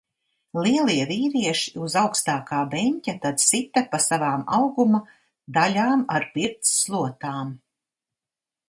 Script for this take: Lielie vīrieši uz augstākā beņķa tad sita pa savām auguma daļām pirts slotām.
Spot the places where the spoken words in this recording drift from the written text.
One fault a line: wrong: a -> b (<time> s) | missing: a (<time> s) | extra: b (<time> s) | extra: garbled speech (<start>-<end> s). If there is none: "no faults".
extra: ar (6.2 s)